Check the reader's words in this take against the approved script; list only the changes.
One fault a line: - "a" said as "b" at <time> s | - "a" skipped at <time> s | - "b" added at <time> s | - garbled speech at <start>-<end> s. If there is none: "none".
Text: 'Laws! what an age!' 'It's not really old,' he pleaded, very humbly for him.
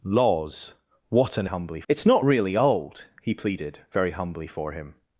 - "age" said as "humbly" at 1.4 s